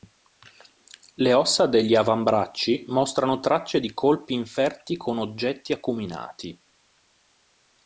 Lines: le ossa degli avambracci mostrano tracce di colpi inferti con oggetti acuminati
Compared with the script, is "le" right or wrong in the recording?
right